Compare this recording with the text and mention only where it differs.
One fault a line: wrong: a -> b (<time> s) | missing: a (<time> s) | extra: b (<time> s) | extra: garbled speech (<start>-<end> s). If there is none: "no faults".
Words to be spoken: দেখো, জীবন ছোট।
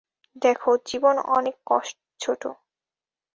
no faults